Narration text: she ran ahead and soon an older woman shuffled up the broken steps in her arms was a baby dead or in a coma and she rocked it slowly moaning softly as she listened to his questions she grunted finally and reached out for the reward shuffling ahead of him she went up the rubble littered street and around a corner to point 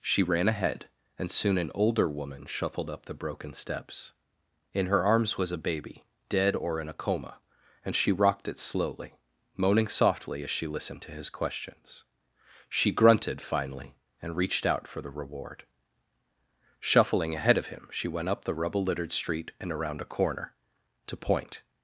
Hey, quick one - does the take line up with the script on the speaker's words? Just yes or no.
yes